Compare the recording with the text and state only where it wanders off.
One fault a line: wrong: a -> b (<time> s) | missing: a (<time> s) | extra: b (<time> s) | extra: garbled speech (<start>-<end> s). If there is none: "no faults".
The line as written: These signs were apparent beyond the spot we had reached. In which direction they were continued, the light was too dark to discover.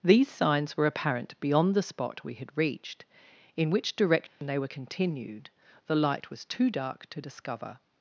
no faults